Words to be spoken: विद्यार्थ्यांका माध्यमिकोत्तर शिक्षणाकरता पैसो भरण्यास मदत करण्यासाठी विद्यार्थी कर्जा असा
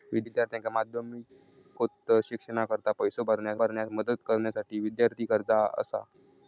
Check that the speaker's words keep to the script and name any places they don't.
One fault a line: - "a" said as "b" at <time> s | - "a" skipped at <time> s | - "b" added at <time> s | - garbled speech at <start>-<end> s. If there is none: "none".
- "भरण्यास" added at 3.5 s